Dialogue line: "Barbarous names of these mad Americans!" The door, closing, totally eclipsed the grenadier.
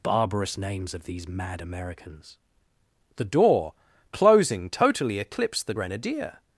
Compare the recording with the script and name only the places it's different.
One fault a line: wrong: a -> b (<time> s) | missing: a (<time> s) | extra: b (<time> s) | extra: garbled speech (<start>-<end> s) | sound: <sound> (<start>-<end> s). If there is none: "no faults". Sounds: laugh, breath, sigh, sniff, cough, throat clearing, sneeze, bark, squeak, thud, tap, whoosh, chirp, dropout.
no faults